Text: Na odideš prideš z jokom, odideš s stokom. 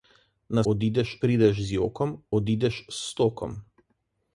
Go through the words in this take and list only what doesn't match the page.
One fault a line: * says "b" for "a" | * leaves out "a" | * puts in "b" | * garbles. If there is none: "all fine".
all fine